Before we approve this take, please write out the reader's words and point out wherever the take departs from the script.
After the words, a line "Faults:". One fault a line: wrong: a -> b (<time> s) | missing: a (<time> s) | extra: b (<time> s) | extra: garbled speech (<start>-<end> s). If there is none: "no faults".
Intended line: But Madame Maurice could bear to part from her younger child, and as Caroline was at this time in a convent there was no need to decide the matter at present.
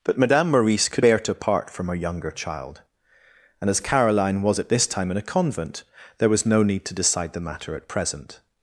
But Madame Maurice could bear to part from her younger child, and as Caroline was at this time in a convent there was no need to decide the matter at present.
Faults:
no faults